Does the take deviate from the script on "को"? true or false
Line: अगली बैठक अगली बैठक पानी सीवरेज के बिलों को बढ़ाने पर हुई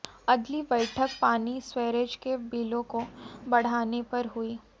false